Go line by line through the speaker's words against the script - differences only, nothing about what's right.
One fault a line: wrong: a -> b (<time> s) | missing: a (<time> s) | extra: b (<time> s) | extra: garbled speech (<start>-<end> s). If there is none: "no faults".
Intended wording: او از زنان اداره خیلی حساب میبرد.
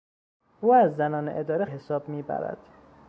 missing: خیلی (1.6 s)